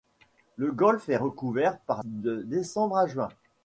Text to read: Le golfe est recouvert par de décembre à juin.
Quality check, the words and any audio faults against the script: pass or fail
pass